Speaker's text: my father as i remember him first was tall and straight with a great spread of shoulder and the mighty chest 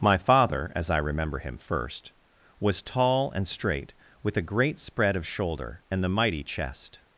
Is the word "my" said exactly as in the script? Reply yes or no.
yes